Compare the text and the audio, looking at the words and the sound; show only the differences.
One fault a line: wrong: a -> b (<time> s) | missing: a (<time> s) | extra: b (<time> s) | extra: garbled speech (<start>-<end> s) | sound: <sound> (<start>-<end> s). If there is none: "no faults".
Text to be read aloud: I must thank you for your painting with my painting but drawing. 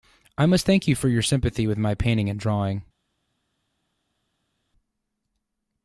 wrong: painting -> sympathy (1.2 s)
wrong: but -> and (2.3 s)